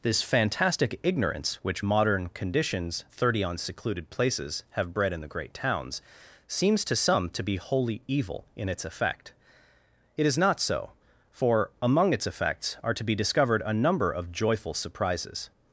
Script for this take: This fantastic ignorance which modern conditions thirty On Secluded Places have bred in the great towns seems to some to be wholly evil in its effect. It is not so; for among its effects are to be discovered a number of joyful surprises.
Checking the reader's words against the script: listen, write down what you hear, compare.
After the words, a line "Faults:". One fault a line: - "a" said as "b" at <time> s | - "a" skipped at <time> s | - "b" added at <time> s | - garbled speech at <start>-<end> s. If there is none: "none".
This fantastic ignorance which modern conditions thirty On Secluded Places have bred in the great towns seems to some to be wholly evil in its effect. It is not so; for among its effects are to be discovered a number of joyful surprises.
Faults:
none